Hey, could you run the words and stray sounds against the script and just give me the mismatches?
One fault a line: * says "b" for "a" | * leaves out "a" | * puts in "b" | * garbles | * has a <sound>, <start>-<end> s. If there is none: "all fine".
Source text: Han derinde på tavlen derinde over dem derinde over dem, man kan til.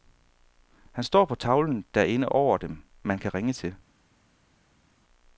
* says "står" for "derinde"
* leaves out "derinde over dem"
* puts in "ringe"